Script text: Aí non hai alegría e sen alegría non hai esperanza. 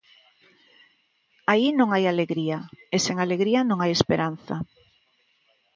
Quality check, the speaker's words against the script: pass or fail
pass